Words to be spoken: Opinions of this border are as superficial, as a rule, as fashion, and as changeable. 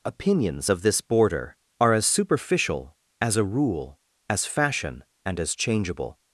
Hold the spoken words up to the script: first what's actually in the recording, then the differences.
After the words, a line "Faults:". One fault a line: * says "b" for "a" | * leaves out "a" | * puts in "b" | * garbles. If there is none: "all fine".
Opinions of this border are as superficial, as a rule, as fashion, and as changeable.
Faults:
all fine